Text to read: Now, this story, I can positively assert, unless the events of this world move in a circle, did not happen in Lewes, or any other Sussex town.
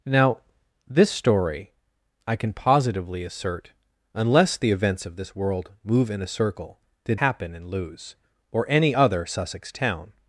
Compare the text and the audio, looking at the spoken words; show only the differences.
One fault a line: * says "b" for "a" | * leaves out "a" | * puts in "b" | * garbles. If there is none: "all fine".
* leaves out "not"